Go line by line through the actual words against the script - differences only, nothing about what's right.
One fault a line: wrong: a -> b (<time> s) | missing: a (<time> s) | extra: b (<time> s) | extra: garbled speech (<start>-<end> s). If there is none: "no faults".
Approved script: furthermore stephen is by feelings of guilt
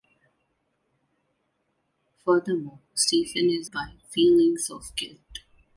no faults